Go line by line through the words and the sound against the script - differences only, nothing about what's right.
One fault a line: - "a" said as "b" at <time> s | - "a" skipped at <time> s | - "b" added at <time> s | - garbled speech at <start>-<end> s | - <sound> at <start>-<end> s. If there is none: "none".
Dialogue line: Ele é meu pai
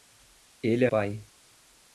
- "meu" skipped at 0.9 s